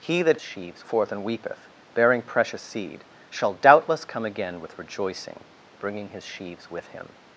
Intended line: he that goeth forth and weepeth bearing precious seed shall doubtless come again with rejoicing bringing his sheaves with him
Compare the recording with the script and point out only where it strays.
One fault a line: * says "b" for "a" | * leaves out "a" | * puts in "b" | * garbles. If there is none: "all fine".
* says "sheaves" for "goeth"